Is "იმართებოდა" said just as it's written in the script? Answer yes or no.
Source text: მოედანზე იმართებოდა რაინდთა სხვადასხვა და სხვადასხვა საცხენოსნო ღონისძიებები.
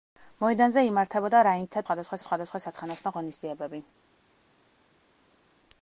yes